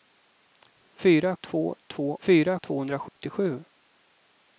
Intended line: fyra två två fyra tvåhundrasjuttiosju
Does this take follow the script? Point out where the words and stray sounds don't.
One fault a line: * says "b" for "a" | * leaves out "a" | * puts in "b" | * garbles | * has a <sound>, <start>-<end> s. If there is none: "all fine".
* has a dropout, 3.1-3.2 s